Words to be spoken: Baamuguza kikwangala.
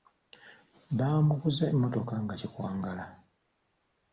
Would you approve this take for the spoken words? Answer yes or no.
no